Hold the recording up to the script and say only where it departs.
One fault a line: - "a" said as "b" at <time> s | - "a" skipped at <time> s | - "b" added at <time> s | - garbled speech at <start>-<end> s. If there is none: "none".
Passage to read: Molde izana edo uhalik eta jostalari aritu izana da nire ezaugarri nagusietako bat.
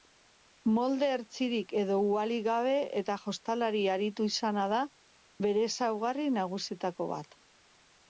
- "izana" said as "hertsirik" at 1.1 s
- "gabe" added at 2.5 s
- "nire" said as "bere" at 5.5 s